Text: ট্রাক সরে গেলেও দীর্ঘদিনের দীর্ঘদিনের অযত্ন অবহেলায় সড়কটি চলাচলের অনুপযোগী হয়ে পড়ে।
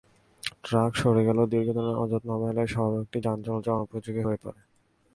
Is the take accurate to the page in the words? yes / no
no